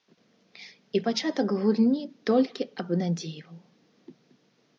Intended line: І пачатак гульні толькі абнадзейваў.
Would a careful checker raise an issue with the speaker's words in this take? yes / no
no